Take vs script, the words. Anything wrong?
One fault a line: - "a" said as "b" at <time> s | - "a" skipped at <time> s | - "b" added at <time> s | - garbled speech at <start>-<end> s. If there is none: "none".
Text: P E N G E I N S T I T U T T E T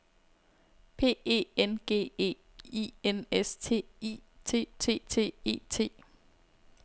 - "U" skipped at 4.7 s